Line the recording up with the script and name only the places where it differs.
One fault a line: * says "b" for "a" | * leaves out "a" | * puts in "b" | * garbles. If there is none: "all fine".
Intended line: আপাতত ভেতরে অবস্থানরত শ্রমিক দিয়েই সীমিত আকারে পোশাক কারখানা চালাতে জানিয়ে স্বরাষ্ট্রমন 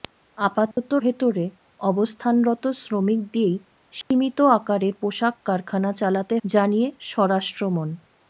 all fine